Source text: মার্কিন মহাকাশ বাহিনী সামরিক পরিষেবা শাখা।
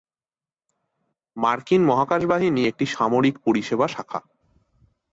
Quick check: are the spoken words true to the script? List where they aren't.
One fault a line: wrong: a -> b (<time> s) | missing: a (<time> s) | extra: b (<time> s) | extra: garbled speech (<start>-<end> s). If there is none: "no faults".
extra: একটি (2.7 s)